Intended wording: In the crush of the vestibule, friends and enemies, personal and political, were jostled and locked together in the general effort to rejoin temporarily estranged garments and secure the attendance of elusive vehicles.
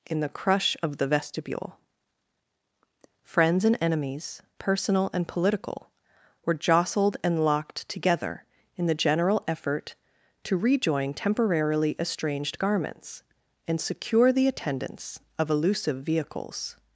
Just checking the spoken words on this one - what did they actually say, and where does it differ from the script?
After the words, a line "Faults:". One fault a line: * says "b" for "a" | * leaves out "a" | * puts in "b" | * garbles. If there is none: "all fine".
In the crush of the vestibule, friends and enemies, personal and political, were jostled and locked together in the general effort to rejoin temporarily estranged garments and secure the attendance of elusive vehicles.
Faults:
all fine